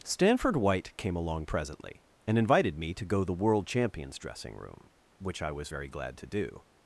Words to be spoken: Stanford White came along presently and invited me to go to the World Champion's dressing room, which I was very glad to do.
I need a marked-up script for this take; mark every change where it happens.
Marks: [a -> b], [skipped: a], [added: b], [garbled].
Stanford White came along presently and invited me to go [skipped: to] the World Champion's dressing room, which I was very glad to do.